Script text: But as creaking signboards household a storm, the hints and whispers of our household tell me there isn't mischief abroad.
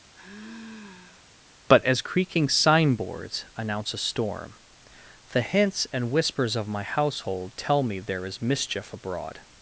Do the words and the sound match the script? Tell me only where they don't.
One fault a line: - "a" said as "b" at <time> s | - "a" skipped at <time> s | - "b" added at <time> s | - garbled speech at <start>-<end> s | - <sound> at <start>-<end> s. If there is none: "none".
- sigh at 0.1-1.3 s
- "household" said as "announce" at 3.6 s
- "our" said as "my" at 6.7 s
- "isn't" said as "is" at 8.3 s